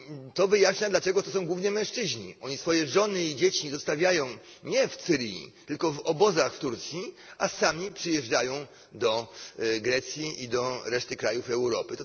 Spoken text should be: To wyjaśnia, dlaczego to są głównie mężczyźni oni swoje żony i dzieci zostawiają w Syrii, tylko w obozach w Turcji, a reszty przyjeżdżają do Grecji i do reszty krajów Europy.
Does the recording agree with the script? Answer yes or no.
no